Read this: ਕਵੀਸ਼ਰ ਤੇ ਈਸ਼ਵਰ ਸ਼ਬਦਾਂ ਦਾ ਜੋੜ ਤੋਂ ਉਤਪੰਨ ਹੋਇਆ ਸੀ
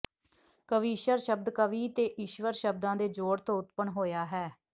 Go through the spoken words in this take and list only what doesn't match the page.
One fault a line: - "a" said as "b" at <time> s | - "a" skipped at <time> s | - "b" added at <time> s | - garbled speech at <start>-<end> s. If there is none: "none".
- "ਸ਼ਬਦ ਕਵੀ" added at 1.2 s
- "ਦਾ" said as "ਦੇ" at 3.0 s
- "ਸੀ" said as "ਹੈ" at 4.3 s